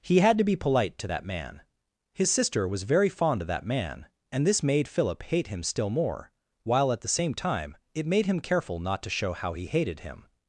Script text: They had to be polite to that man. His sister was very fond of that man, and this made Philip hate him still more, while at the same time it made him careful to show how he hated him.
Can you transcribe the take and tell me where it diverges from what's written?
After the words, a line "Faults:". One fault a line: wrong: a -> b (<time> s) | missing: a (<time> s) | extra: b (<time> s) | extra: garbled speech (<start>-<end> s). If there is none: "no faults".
He had to be polite to that man. His sister was very fond of that man, and this made Philip hate him still more, while at the same time it made him careful not to show how he hated him.
Faults:
wrong: They -> He (0.0 s)
extra: not (8.8 s)